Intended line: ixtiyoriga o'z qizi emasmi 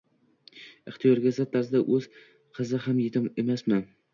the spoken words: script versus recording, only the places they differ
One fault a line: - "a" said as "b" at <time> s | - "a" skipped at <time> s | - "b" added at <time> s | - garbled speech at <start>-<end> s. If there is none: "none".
- "zid tarzda" added at 1.4 s
- "ham yetim" added at 2.9 s